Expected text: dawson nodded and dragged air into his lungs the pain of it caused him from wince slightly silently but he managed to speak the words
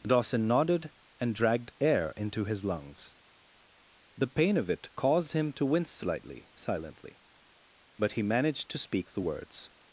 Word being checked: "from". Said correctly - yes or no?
no